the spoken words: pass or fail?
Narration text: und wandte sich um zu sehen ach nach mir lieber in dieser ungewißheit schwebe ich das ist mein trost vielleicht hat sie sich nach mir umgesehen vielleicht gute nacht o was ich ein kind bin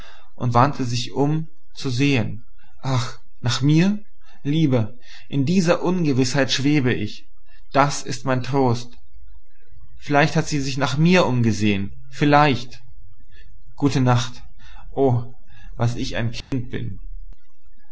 pass